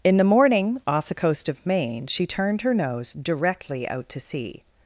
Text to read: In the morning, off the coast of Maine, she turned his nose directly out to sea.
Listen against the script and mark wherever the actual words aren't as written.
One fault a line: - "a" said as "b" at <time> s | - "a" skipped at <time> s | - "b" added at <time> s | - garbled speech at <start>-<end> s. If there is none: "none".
- "his" said as "her" at 2.6 s